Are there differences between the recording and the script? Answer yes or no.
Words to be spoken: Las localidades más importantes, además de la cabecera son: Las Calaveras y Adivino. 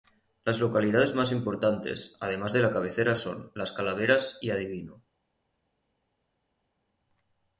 no